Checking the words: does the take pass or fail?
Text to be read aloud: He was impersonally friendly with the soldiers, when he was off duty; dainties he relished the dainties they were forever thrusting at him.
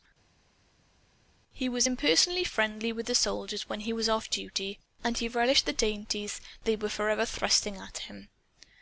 fail